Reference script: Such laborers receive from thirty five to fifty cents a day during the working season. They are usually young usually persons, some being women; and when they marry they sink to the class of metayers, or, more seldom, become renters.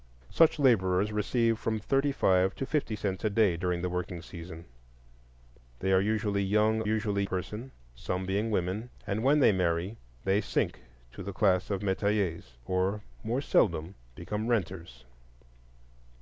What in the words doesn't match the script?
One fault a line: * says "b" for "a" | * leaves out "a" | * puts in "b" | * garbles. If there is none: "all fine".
all fine